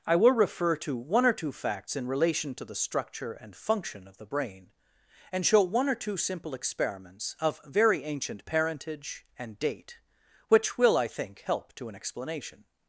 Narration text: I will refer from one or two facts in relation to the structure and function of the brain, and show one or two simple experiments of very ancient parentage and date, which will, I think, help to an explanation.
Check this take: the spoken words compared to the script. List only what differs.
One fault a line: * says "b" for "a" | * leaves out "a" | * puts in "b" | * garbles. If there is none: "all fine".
* says "to" for "from"